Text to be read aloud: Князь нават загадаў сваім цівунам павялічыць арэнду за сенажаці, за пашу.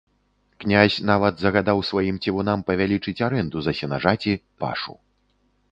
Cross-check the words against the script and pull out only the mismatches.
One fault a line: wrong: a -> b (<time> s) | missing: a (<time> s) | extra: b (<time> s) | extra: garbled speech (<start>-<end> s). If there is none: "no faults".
missing: за (4.3 s)